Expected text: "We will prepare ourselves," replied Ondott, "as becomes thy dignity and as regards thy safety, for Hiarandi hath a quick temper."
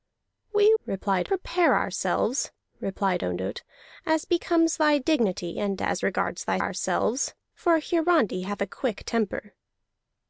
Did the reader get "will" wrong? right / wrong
wrong